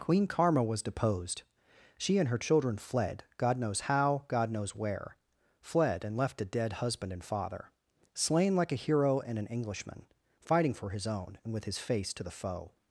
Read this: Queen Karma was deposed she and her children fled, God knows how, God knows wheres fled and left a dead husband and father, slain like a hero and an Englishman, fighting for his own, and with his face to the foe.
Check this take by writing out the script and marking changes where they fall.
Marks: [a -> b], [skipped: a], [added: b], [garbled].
Queen Karma was deposed she and her children fled, God knows how, God knows [wheres -> where] fled and left a dead husband and father, slain like a hero and an Englishman, fighting for his own, and with his face to the foe.